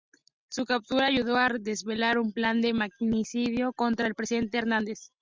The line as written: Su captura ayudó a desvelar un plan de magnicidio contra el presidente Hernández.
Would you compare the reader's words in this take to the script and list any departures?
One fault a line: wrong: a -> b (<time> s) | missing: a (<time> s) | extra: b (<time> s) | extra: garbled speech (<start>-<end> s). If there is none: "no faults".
no faults